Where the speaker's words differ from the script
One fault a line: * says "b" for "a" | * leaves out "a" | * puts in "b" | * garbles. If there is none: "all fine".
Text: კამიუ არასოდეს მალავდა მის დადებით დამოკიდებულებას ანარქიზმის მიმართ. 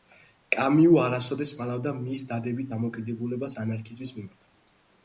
all fine